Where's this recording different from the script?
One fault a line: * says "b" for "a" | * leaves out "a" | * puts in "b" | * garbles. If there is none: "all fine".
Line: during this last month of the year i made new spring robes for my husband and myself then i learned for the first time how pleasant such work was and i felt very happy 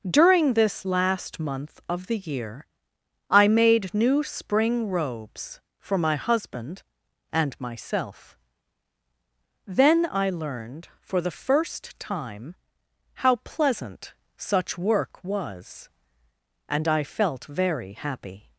all fine